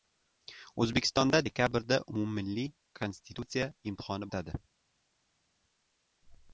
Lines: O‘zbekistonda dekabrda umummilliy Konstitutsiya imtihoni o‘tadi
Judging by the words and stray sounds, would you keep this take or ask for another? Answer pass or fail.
pass